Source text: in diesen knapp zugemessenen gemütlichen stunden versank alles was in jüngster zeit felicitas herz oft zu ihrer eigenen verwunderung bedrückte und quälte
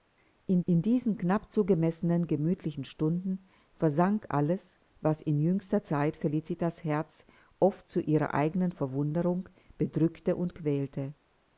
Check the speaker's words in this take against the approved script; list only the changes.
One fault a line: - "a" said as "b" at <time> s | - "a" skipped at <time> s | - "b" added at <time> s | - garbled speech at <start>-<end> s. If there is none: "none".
- "in" added at 0.7 s